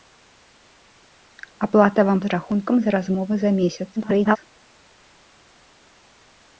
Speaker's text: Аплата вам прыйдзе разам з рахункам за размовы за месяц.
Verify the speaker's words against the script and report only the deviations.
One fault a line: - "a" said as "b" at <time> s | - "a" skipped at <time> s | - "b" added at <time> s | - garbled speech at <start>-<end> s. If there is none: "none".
- "прыйдзе разам" skipped at 2.2 s
- garbled speech at 4.0-4.4 s